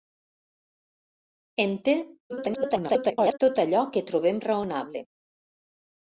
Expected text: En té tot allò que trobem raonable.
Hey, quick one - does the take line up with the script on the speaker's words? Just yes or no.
no